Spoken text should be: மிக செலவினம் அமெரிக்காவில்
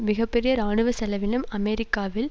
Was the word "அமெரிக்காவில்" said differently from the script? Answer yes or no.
no